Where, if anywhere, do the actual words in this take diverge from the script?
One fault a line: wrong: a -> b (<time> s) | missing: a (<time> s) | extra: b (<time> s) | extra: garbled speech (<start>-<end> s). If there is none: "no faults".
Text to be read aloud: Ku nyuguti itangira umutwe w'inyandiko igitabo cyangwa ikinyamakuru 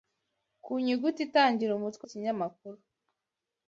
missing: w'inyandiko igitabo cyangwa (2.0 s)